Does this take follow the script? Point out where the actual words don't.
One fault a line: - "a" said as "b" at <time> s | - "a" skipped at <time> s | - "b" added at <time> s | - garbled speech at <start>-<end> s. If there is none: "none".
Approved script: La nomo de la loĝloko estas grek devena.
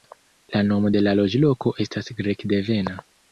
none